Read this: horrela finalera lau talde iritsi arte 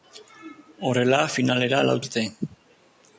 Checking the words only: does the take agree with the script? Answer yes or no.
no